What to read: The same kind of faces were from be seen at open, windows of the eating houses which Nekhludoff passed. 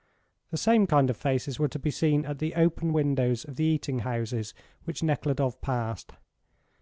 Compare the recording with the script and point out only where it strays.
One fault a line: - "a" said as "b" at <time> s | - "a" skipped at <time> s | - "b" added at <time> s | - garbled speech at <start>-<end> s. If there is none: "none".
- "from" said as "to" at 1.7 s
- "the" added at 2.4 s